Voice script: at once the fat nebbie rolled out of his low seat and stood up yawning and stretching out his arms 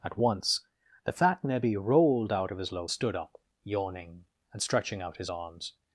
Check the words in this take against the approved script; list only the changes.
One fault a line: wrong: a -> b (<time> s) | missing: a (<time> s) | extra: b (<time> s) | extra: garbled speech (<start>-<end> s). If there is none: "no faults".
missing: seat and (2.9 s)